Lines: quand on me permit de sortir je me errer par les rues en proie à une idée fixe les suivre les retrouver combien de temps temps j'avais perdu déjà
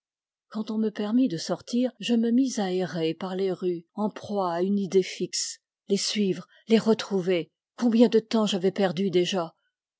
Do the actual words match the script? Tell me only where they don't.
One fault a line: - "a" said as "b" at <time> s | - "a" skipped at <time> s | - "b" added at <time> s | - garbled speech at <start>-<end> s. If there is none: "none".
- "mis à" added at 2.3 s
- "temps" skipped at 8.5 s